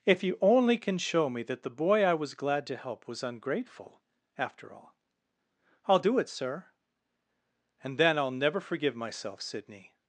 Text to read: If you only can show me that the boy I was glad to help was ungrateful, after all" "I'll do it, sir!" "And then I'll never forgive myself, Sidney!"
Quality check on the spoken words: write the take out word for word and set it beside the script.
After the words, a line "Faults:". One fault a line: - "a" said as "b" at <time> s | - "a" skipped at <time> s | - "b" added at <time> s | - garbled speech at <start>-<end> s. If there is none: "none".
If you only can show me that the boy I was glad to help was ungrateful, after all" "I'll do it, sir!" "And then I'll never forgive myself, Sidney!"
Faults:
none